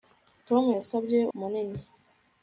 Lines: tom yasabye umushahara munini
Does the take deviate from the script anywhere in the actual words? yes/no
yes